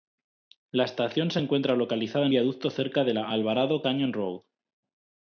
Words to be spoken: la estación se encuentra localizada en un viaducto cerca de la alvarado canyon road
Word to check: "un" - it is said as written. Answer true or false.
false